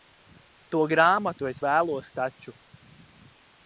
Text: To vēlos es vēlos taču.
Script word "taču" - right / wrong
right